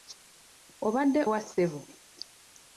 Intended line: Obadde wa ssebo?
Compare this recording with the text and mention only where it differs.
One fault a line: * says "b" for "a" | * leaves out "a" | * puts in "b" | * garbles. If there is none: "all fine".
all fine